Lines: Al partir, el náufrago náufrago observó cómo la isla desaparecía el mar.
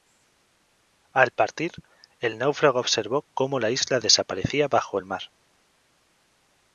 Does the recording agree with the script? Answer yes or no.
no